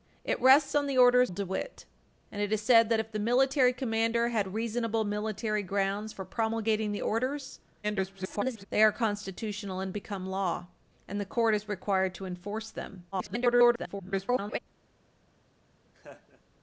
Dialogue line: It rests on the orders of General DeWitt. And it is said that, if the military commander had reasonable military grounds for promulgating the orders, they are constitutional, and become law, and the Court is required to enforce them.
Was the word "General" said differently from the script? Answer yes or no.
yes